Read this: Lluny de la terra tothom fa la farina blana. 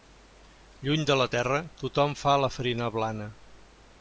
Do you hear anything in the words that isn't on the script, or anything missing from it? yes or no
no